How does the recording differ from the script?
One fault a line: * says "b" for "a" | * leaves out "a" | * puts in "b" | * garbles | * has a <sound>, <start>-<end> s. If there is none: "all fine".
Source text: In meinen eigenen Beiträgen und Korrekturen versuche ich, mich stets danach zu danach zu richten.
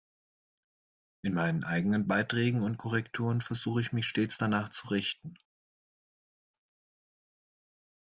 * leaves out "danach zu"